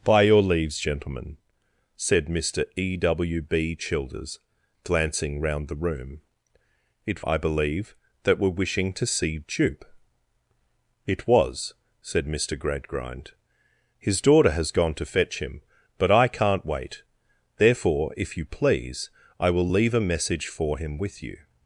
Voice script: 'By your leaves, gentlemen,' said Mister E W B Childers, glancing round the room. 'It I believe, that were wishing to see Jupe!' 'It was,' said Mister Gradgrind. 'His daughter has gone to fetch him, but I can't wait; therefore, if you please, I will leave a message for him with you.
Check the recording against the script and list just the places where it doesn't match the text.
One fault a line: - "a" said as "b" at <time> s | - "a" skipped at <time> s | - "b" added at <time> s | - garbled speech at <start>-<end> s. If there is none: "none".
none